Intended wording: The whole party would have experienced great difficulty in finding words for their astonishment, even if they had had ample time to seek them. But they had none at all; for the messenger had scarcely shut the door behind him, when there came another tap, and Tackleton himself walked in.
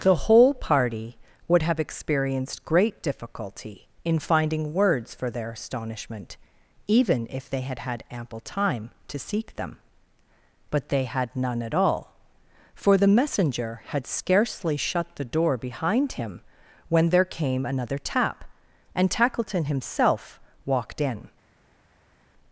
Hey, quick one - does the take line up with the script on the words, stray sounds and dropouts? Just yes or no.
yes